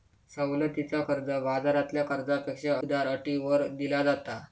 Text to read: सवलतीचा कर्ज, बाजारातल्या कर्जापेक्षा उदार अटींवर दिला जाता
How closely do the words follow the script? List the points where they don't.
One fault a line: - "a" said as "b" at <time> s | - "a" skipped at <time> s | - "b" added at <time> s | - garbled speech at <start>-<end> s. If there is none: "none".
none